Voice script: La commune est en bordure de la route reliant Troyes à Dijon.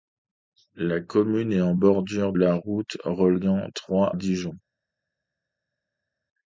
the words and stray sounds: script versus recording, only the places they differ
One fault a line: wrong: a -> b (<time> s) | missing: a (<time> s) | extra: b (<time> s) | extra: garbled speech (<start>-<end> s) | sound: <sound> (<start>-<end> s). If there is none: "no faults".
missing: de (2.3 s)
missing: à (4.1 s)